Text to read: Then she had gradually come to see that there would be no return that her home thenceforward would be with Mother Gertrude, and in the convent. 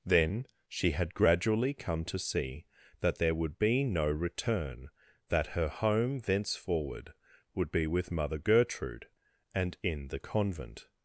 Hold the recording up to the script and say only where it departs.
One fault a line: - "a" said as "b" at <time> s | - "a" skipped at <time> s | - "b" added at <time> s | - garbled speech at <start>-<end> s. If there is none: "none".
none